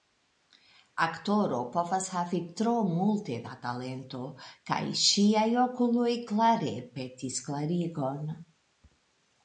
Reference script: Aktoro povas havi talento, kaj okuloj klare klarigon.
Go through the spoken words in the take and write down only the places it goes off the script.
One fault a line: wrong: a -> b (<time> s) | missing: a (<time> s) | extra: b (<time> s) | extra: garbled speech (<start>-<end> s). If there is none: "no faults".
extra: tro multe da (2.6 s)
extra: ŝiaj (5.0 s)
extra: petis (7.0 s)